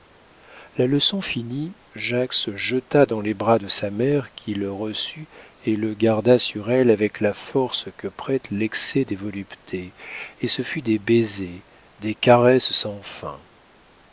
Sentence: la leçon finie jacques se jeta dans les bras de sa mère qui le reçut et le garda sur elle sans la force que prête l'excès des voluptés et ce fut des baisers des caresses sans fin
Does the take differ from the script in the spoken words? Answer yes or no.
yes